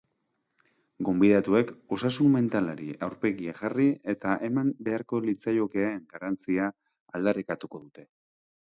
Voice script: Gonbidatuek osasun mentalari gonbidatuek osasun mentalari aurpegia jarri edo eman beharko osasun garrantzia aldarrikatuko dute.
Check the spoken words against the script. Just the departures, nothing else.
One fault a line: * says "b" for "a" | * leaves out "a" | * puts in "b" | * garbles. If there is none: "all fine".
* leaves out "gonbidatuek osasun mentalari"
* says "eta" for "edo"
* says "litzaiokeen" for "osasun"